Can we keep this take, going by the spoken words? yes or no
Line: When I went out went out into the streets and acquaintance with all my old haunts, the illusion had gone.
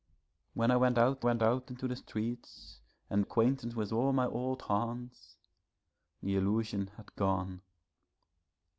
yes